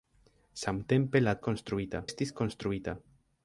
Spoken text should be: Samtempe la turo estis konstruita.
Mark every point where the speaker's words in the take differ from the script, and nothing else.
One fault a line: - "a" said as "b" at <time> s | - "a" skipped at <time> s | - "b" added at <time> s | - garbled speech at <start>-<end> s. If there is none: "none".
- "turo" said as "konstruita" at 1.5 s